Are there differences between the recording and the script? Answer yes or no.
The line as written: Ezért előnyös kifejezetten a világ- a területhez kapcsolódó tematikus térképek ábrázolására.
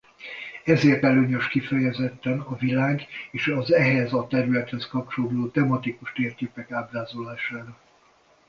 yes